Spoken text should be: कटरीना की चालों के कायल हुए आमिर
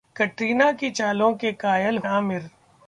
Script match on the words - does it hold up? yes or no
no